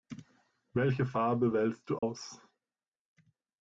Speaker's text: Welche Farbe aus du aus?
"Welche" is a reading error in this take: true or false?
false